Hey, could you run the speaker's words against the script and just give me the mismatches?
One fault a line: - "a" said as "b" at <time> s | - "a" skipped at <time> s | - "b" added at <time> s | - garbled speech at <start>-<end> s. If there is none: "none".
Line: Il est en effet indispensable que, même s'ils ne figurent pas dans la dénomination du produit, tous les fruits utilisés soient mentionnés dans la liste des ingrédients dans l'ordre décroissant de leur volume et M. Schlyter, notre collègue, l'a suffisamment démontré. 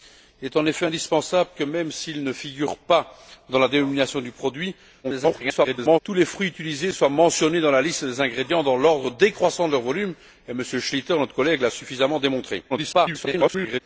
- garbled speech at 5.0-6.0 s
- garbled speech at 12.7-13.8 s